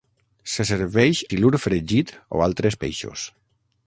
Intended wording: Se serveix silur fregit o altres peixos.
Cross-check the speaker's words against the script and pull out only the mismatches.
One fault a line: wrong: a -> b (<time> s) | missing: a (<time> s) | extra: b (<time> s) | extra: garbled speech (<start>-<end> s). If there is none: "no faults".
no faults